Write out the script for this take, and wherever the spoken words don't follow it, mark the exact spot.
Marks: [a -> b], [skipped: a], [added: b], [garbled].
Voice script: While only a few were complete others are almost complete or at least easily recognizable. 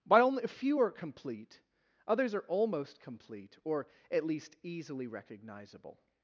While only a few [were -> are] complete others are almost complete or at least easily recognizable.